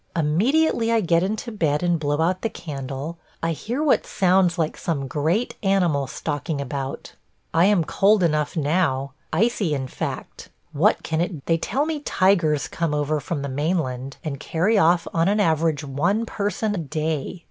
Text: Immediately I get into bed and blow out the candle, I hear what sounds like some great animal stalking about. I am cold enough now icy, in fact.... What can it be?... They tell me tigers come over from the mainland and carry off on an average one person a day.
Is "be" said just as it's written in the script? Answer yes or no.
no